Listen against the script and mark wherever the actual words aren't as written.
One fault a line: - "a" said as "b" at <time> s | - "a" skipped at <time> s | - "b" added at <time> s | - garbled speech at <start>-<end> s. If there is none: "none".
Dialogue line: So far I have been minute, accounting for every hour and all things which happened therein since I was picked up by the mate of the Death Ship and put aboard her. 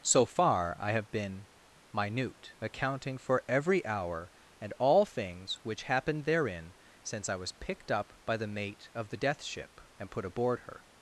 none